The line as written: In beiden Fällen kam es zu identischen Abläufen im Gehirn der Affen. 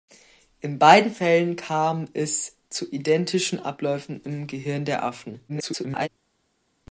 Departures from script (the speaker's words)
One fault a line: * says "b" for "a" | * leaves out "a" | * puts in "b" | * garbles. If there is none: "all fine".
* garbles